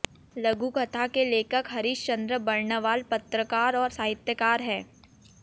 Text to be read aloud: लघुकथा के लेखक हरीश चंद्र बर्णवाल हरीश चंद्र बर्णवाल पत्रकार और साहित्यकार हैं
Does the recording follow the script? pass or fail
fail